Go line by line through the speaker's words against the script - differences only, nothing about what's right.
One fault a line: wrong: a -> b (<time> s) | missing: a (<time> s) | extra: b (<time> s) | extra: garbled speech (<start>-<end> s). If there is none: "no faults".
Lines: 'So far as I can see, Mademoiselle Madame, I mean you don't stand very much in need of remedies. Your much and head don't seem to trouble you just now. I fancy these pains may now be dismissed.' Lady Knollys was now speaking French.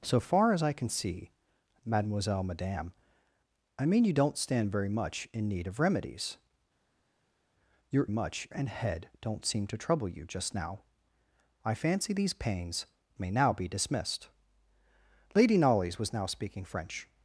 no faults